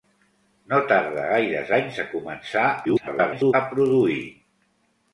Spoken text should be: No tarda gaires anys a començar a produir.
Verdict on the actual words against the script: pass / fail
fail